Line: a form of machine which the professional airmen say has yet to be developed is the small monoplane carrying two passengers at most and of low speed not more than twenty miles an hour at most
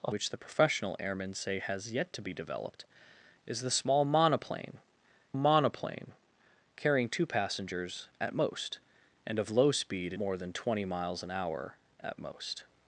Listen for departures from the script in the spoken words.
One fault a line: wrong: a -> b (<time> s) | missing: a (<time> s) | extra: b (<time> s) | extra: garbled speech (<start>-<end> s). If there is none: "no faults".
missing: form of machine (0.1 s)
extra: monoplane (5.3 s)
missing: not (10.2 s)